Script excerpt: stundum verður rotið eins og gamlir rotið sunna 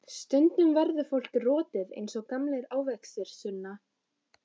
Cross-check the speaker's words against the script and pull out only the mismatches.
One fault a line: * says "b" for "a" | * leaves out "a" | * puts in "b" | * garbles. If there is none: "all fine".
* puts in "fólk"
* says "ávextir" for "rotið"